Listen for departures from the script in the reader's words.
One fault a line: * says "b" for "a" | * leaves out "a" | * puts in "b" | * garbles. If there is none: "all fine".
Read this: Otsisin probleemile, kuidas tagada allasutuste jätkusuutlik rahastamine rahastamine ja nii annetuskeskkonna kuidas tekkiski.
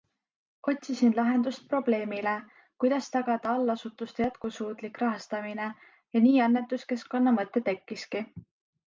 * puts in "lahendust"
* leaves out "rahastamine"
* says "mõte" for "kuidas"